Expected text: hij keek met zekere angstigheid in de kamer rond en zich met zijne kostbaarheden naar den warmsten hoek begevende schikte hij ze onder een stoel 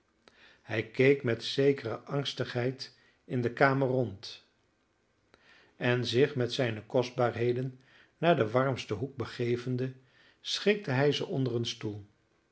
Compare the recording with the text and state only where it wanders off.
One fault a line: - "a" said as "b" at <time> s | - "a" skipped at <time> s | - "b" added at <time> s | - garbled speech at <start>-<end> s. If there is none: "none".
none